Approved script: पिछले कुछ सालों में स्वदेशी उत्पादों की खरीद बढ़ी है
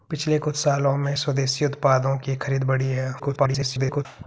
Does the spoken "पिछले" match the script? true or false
true